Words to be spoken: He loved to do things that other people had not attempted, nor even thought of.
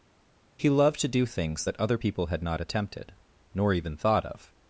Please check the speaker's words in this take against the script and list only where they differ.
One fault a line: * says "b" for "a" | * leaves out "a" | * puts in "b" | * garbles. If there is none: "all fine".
all fine